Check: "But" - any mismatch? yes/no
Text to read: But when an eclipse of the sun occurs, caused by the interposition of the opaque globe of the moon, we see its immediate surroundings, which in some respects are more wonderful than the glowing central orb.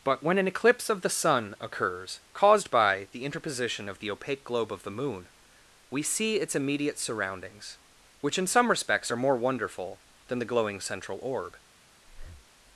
no